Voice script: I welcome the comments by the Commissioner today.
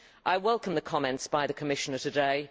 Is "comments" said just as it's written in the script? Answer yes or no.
yes